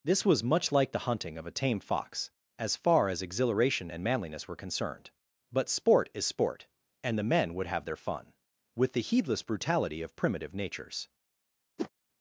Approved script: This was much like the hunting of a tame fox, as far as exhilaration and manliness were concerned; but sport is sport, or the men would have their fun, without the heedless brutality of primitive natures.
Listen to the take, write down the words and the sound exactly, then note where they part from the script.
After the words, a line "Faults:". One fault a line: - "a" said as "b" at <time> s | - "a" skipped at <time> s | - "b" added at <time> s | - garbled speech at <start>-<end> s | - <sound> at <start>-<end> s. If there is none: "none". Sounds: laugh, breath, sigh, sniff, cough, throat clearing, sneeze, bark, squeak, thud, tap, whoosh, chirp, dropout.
This was much like the hunting of a tame fox, as far as exhilaration and manliness were concerned; but sport is sport, and the men would have their fun, with the heedless brutality of primitive natures.
Faults:
- "or" said as "and" at 7.0 s
- "without" said as "with" at 8.8 s
- whoosh at 11.8-11.9 s